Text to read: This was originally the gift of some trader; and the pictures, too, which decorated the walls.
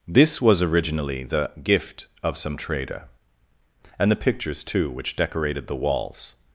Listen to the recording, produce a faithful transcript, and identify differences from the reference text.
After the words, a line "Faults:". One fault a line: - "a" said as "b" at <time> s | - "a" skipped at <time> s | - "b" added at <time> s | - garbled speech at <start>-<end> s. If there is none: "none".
This was originally the gift of some trader; and the pictures, too, which decorated the walls.
Faults:
none